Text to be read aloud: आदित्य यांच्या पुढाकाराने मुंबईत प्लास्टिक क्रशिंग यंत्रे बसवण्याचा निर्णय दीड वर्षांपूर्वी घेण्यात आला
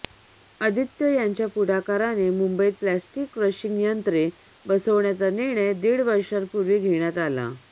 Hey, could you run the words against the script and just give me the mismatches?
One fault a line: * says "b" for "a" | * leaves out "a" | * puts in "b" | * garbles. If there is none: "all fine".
all fine